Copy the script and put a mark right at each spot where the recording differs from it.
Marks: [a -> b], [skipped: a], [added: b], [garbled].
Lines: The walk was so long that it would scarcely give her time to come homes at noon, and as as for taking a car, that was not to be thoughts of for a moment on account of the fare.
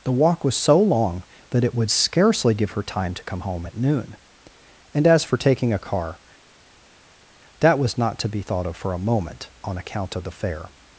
The walk was so long that it would scarcely give her time to come [homes -> home] at noon, and as [skipped: as] for taking a car, that was not to be [thoughts -> thought] of for a moment on account of the fare.